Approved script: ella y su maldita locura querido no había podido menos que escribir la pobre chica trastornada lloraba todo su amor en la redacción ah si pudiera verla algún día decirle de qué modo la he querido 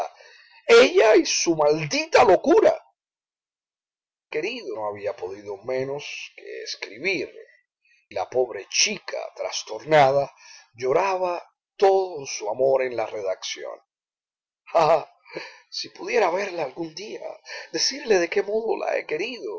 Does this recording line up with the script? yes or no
yes